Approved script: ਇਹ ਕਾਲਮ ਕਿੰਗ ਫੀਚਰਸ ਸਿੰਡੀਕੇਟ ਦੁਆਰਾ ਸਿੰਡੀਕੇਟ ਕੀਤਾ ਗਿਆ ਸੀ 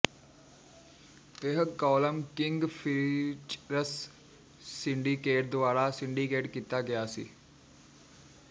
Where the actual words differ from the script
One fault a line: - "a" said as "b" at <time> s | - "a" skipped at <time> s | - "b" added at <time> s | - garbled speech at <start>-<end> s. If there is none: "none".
none